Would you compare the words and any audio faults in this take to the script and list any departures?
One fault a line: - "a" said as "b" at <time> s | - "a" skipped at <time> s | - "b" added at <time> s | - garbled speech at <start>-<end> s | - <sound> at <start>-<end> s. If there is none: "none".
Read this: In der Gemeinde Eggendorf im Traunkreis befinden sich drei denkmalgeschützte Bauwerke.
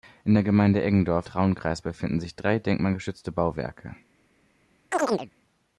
- "im" skipped at 1.3 s
- chirp at 4.9-5.3 s